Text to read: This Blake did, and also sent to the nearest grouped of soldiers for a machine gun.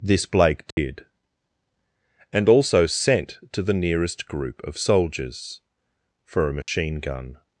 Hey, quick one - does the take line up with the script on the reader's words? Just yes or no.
no